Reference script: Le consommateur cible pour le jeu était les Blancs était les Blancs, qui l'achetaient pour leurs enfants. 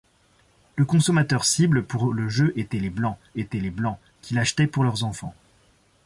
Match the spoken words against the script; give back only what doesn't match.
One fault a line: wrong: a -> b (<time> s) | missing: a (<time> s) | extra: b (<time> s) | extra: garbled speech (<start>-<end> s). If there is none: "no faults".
no faults